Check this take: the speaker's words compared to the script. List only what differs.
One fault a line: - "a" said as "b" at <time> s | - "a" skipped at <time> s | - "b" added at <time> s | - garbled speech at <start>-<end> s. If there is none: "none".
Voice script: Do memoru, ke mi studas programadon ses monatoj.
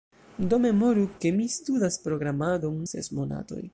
none